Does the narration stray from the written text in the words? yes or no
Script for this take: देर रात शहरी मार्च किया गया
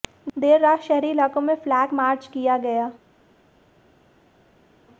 yes